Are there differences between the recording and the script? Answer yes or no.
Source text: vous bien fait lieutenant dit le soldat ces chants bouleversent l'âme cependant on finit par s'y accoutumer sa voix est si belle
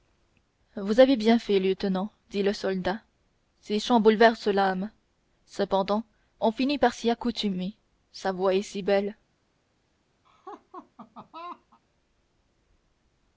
yes